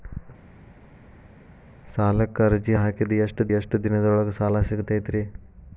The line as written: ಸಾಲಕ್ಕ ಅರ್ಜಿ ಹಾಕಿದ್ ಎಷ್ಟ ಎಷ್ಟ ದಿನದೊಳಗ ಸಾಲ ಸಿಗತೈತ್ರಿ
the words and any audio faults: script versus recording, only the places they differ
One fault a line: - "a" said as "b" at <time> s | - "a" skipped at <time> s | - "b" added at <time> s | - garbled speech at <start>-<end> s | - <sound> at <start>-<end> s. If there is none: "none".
none